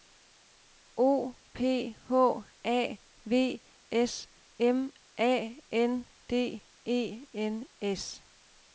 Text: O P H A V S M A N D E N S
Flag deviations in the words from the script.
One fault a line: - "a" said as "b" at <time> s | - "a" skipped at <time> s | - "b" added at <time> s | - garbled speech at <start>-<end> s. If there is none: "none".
none